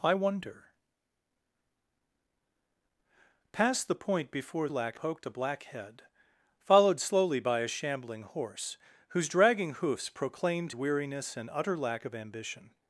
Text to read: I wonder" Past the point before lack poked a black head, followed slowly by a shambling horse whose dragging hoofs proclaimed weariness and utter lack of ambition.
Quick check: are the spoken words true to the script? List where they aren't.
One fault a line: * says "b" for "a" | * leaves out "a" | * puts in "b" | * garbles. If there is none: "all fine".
all fine